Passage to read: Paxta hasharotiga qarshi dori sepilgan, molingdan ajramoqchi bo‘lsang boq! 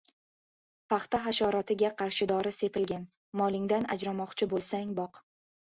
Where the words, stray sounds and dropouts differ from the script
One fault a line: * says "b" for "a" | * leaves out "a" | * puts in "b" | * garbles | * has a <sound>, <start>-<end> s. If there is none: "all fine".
all fine